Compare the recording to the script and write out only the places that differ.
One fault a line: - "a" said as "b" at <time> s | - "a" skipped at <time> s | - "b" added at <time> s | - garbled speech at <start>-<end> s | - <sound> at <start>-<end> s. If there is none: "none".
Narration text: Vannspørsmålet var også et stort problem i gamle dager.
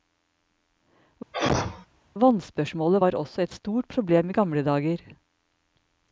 - sneeze at 1.3-1.9 s